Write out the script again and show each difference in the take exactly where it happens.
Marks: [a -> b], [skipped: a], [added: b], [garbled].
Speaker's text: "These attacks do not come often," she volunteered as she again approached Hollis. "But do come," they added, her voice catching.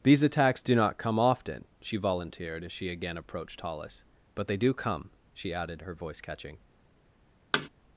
"These attacks do not come often," she volunteered as she again approached Hollis. "But [added: they] do come," [they -> she] added, her voice catching.